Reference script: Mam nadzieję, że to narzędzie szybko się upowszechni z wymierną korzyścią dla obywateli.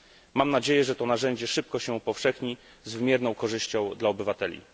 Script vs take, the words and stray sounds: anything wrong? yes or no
no